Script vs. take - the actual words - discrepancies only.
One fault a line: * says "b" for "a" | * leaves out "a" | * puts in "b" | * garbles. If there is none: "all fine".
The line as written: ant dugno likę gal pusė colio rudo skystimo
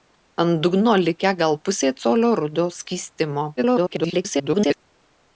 * garbles